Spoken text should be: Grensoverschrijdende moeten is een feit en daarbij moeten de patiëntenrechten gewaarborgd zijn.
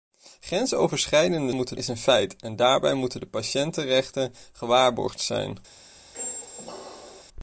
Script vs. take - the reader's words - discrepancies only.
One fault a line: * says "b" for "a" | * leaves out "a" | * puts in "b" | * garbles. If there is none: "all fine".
all fine